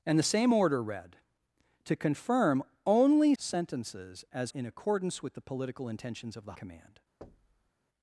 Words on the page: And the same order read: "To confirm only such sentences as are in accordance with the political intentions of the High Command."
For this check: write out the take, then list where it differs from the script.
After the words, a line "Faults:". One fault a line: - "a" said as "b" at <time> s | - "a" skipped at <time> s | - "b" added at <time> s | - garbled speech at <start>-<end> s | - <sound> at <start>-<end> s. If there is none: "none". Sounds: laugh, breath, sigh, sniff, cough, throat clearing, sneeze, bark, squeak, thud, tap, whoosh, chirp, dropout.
And the same order read: "To confirm only sentences as in accordance with the political intentions of the Command."
Faults:
- "such" skipped at 3.4 s
- "are" skipped at 4.5 s
- "High" skipped at 6.5 s
- thud at 7.2-7.7 s